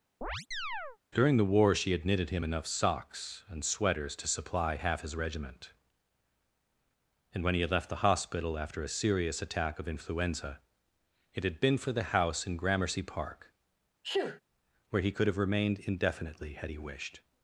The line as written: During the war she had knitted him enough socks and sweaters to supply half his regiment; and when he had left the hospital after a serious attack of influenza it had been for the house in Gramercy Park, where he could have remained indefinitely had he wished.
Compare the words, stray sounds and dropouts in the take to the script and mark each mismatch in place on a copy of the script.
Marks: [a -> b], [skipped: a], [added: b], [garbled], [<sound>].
[chirp] During the war she had knitted him enough socks and sweaters to supply half his regiment; and when he had left the hospital after a serious attack of influenza it had been for the house in Gramercy Park, [sneeze] where he could have remained indefinitely had he wished.